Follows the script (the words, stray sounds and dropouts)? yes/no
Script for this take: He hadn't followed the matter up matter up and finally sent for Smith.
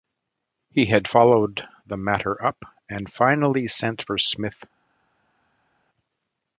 no